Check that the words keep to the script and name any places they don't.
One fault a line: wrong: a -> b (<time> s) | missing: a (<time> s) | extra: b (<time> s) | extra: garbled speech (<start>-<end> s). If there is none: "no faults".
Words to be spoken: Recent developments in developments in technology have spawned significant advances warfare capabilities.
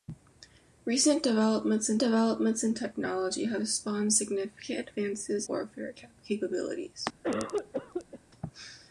no faults